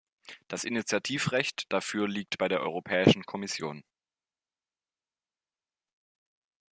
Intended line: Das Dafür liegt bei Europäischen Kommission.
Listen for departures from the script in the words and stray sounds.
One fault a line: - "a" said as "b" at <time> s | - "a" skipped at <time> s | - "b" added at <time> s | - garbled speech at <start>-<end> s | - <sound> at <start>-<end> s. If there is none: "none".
- "Initiativrecht" added at 0.6 s
- "der" added at 2.5 s